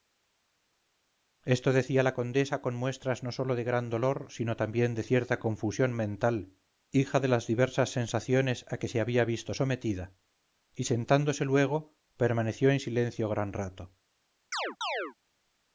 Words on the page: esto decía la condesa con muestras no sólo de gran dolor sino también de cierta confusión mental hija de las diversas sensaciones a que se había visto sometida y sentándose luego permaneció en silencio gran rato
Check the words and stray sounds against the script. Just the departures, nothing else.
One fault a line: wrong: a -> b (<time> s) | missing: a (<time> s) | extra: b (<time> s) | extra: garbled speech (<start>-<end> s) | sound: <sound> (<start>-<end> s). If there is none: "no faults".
sound: chirp (14.5-15.1 s)